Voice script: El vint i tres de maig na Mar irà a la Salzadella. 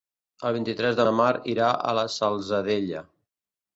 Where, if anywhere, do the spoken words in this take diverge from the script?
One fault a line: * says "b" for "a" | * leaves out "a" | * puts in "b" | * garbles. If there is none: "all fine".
* leaves out "maig"